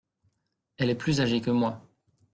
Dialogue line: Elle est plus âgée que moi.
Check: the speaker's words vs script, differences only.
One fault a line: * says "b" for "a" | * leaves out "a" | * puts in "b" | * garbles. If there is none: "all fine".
all fine